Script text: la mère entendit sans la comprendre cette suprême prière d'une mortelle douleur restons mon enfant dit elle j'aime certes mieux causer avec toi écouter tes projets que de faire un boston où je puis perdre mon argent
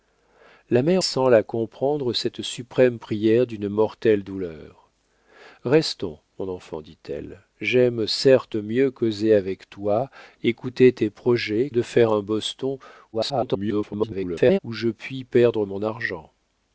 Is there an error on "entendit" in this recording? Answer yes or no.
yes